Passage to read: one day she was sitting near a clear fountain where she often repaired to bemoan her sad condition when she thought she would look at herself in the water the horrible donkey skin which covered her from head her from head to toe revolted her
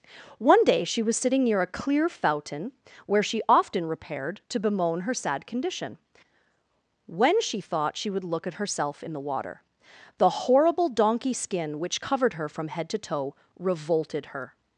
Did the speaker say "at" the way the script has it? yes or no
yes